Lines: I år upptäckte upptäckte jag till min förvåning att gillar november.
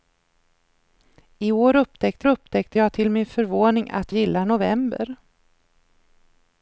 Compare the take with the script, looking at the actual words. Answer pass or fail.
pass